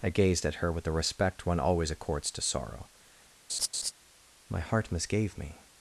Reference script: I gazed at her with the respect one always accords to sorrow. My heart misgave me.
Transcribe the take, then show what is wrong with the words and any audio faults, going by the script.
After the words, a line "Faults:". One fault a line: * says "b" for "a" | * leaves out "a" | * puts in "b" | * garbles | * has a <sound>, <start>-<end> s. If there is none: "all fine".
I gazed at her with the respect one always accords to sorrow. My heart misgave me.
Faults:
* has a laugh, 3.5-3.9 s